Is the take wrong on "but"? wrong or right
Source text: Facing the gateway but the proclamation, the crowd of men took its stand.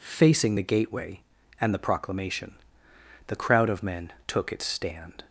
wrong